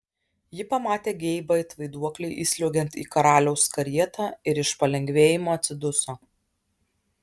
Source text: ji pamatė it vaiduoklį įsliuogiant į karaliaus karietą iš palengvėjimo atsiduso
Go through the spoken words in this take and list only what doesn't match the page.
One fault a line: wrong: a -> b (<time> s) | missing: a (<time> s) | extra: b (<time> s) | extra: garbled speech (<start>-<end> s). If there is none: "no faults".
extra: geibą (1.2 s)
extra: ir (4.5 s)